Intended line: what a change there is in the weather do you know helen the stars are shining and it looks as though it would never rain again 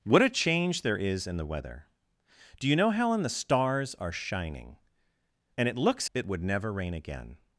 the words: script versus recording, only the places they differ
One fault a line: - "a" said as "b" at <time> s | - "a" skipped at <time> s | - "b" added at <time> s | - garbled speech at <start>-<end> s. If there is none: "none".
- "as though" skipped at 6.1 s